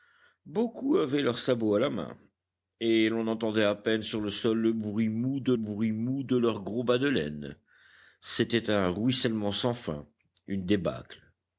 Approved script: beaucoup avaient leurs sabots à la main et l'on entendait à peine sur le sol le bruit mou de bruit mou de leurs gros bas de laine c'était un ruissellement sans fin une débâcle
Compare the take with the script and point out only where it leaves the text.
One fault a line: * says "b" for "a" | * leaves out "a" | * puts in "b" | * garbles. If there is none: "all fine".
all fine